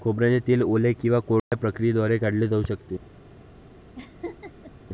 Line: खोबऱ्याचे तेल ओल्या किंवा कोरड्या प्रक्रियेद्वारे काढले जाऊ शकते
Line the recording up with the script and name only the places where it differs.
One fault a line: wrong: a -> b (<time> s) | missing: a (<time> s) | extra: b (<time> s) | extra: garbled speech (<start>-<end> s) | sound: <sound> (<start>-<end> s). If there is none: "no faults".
sound: dropout (1.4-1.5 s)
sound: laugh (4.0-4.7 s)